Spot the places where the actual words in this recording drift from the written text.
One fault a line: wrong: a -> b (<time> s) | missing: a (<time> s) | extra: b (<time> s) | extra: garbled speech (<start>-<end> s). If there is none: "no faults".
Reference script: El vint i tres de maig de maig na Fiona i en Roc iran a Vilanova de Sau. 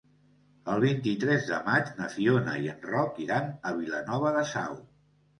missing: de maig (1.9 s)